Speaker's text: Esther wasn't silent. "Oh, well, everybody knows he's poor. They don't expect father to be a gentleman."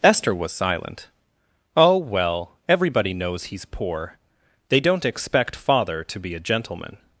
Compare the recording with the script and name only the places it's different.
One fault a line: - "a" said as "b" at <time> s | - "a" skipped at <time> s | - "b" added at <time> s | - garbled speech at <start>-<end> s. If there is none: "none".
- "wasn't" said as "was" at 0.3 s